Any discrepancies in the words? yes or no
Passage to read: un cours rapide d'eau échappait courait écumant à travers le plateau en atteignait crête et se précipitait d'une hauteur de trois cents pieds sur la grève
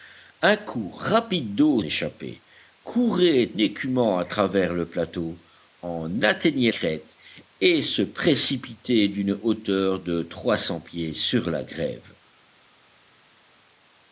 no